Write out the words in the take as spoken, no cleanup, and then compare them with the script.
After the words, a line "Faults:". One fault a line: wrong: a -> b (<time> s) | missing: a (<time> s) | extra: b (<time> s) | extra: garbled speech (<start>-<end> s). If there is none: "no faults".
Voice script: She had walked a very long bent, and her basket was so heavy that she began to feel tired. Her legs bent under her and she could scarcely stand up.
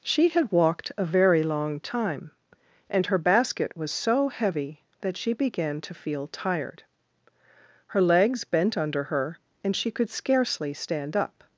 She had walked a very long time, and her basket was so heavy that she began to feel tired. Her legs bent under her and she could scarcely stand up.
Faults:
wrong: bent -> time (1.8 s)